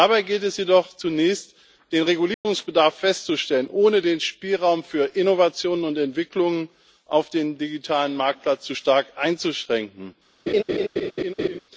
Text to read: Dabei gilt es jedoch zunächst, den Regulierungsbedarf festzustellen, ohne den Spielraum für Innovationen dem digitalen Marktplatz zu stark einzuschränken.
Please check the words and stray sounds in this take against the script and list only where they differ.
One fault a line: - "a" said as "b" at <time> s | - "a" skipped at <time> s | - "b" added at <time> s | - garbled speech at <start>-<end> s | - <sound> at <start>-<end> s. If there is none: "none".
- dropout at 2.3-2.5 s
- "und Entwicklungen auf" added at 5.8 s
- laugh at 10.5-11.6 s